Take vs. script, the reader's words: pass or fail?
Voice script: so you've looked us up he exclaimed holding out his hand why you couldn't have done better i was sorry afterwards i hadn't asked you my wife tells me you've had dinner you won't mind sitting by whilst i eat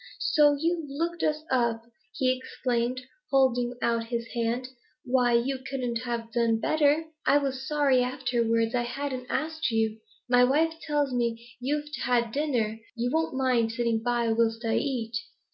pass